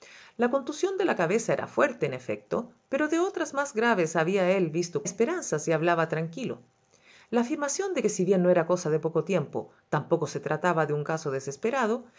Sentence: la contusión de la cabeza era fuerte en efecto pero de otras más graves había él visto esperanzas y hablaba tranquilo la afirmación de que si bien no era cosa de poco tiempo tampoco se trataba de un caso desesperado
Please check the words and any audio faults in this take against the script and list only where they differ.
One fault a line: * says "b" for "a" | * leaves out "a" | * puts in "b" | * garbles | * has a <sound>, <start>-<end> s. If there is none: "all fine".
all fine